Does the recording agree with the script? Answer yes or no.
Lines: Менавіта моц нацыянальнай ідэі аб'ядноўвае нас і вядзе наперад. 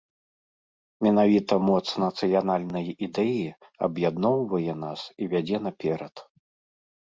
yes